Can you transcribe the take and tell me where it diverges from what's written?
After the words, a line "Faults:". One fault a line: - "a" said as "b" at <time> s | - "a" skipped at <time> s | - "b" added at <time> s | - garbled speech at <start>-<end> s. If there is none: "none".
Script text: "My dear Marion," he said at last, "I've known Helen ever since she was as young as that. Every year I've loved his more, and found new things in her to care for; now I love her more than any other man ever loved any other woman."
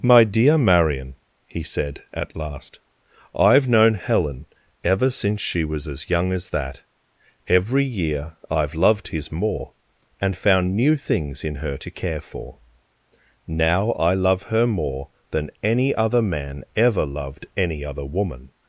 "My dear Marion," he said at last, "I've known Helen ever since she was as young as that. Every year I've loved his more, and found new things in her to care for; now I love her more than any other man ever loved any other woman."
Faults:
none